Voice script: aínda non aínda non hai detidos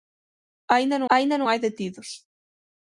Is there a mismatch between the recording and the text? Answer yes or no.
no